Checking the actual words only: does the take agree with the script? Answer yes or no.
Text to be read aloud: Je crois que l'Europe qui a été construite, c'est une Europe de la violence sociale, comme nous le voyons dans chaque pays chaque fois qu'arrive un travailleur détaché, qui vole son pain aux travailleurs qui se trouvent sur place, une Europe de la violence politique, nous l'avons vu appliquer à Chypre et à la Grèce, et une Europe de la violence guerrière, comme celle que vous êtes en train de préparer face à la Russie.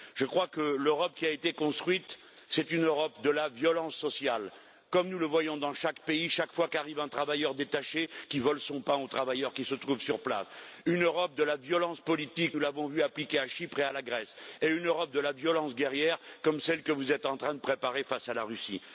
yes